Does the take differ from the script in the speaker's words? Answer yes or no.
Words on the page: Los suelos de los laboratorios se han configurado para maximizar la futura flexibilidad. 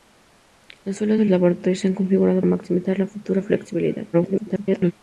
yes